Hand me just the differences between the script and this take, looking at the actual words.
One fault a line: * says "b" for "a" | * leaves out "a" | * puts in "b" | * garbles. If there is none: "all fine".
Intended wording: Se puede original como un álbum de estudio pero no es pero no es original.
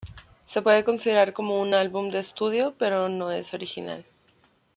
* says "considerar" for "original"
* leaves out "pero no es"